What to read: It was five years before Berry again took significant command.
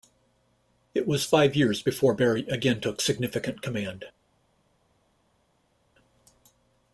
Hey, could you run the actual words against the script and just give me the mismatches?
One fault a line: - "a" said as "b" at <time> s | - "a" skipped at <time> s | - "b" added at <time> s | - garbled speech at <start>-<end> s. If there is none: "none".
none